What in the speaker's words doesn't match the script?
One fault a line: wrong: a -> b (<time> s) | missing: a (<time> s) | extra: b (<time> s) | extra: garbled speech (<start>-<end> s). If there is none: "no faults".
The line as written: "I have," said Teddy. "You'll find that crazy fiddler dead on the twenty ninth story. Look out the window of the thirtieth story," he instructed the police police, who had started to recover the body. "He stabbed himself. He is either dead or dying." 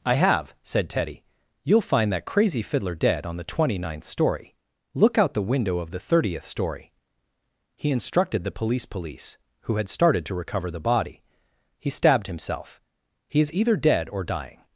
no faults